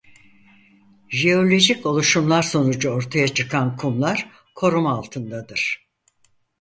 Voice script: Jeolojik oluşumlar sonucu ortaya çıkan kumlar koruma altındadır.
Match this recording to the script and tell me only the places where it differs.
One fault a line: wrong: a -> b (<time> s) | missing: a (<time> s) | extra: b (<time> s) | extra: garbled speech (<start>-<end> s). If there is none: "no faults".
no faults